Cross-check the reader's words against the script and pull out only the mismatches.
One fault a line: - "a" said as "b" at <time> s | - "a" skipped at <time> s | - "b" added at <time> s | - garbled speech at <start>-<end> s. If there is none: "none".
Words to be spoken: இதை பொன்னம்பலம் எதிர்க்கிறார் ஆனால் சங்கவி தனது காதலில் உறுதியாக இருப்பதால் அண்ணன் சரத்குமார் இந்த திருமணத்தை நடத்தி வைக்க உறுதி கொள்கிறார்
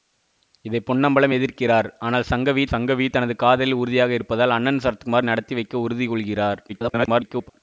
- "சங்கவி" added at 2.7 s
- "இந்த திருமணத்தை" skipped at 5.3 s
- garbled speech at 6.7-7.5 s